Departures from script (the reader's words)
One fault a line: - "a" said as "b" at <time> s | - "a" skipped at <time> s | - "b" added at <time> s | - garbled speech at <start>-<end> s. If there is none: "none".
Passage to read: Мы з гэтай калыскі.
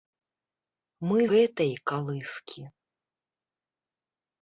- "з" skipped at 1.2 s